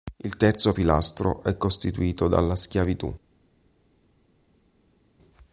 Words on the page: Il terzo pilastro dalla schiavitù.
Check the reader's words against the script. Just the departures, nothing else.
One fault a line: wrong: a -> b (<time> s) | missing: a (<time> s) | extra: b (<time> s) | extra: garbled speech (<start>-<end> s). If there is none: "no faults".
extra: è costituito (1.4 s)